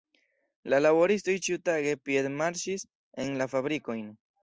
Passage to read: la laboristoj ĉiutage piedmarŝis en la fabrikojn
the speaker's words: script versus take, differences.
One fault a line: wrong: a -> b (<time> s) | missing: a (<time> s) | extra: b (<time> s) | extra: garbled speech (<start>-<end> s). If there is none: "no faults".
no faults